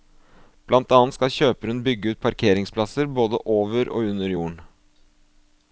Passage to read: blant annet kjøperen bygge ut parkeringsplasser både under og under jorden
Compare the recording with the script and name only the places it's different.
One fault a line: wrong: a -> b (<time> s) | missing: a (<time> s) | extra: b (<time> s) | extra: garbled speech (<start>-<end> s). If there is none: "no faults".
extra: skal (1.2 s)
wrong: under -> over (3.6 s)